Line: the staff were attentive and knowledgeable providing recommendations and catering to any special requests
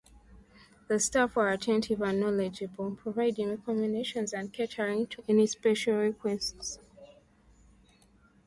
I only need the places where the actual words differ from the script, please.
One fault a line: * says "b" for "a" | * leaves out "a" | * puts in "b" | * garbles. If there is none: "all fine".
all fine